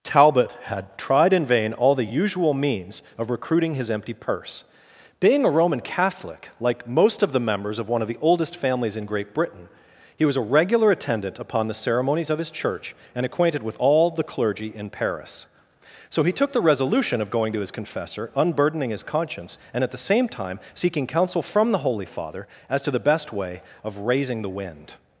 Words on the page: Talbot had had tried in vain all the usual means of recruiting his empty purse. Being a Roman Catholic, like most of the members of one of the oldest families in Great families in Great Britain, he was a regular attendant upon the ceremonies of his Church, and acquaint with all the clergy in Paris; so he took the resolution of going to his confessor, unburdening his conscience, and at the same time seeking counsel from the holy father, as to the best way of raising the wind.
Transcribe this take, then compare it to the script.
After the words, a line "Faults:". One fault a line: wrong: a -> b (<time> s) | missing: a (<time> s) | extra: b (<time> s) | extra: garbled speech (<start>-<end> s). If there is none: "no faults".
Talbot had tried in vain all the usual means of recruiting his empty purse. Being a Roman Catholic, like most of the members of one of the oldest families in Great Britain, he was a regular attendant upon the ceremonies of his Church, and acquainted with all the clergy in Paris; so he took the resolution of going to his confessor, unburdening his conscience, and at the same time seeking counsel from the holy father, as to the best way of raising the wind.
Faults:
missing: had (1.0 s)
missing: families in Great (9.3 s)
wrong: acquaint -> acquainted (13.2 s)